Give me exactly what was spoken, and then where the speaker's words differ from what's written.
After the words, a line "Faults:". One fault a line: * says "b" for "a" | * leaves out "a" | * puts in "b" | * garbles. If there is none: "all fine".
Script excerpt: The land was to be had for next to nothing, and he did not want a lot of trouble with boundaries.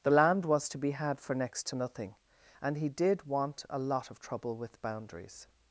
The land was to be had for next to nothing, and he did want a lot of trouble with boundaries.
Faults:
* leaves out "not"